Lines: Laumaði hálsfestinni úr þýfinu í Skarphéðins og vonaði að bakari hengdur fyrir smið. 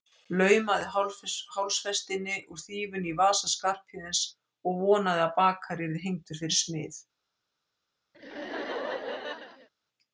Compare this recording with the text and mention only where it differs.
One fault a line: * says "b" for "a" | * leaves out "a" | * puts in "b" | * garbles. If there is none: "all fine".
* puts in "vasa"
* puts in "yrði"